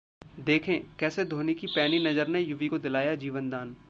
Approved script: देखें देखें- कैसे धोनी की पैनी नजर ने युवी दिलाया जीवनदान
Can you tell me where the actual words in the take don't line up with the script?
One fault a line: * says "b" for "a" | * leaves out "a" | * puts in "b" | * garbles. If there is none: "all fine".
* leaves out "देखें"
* puts in "को"